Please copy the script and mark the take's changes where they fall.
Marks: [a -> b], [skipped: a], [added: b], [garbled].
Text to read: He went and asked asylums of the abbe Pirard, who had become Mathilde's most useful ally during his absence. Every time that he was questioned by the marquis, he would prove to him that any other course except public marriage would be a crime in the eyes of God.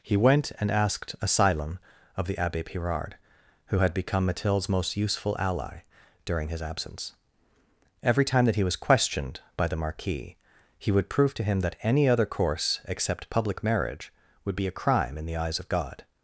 He went and asked [asylums -> asylum] of the abbe Pirard, who had become Mathilde's most useful ally during his absence. Every time that he was questioned by the marquis, he would prove to him that any other course except public marriage would be a crime in the eyes of God.